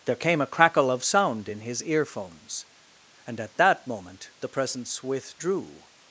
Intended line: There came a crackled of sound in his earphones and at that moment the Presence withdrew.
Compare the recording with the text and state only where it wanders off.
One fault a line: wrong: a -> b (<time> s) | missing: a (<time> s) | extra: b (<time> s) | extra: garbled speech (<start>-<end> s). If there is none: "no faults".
wrong: crackled -> crackle (0.5 s)